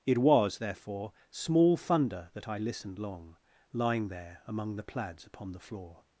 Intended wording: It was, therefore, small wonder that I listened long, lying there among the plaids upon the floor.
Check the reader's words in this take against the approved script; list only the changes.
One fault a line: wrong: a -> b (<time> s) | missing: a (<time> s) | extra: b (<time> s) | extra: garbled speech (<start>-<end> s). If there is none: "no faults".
wrong: wonder -> thunder (1.8 s)